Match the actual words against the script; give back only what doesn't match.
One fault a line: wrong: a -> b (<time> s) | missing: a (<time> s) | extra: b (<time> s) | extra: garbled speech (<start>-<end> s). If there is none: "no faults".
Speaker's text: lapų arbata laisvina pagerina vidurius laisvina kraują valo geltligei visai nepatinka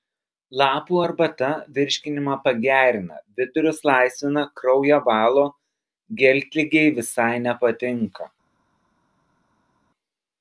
wrong: laisvina -> virškinimą (1.8 s)